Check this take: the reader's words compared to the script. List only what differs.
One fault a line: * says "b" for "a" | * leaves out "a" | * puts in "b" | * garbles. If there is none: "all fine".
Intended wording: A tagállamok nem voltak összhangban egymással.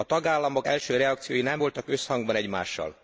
* puts in "első reakciói"